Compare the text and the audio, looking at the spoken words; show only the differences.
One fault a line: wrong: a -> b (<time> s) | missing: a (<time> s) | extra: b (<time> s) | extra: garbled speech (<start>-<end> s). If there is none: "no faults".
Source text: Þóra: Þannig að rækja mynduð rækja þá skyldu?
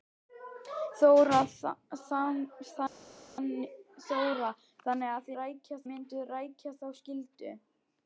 no faults